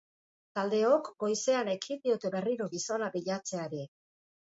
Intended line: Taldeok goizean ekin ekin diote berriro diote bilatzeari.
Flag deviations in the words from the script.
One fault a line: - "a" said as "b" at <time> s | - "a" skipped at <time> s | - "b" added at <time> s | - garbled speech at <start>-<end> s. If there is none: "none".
- "ekin" skipped at 2.0 s
- "diote" said as "gizona" at 2.7 s